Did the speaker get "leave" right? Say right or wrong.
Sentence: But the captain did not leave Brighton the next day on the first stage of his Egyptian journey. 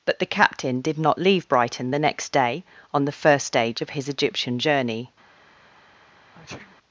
right